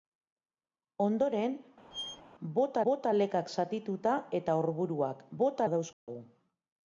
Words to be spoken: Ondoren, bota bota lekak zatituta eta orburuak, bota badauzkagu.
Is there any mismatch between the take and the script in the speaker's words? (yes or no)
no